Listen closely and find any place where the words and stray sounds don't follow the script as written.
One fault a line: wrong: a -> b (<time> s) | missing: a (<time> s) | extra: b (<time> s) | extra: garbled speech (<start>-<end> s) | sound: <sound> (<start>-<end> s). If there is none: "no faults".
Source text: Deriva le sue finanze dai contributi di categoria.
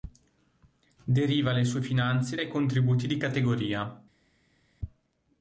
no faults